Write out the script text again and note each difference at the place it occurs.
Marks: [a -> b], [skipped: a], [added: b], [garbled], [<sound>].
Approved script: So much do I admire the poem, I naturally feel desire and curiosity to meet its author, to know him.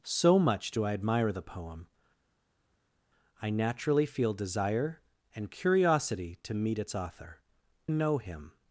So much do I admire the poem, I naturally feel desire and curiosity to meet its author, [skipped: to] know him.